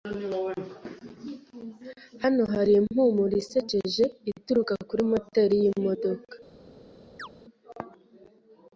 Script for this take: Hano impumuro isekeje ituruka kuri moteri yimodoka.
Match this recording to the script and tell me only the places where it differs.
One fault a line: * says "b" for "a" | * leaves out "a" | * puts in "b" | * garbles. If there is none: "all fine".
* puts in "hari"